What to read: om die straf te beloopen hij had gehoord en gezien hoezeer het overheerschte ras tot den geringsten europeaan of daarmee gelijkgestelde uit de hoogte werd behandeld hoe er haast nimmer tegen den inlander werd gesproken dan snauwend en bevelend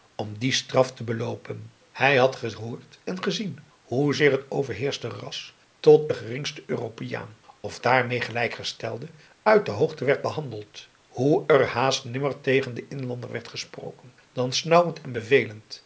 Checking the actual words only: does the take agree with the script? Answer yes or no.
yes